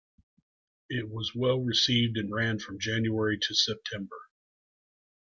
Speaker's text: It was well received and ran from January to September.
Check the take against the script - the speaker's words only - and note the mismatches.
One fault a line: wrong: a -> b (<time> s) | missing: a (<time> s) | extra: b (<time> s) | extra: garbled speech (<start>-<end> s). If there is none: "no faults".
no faults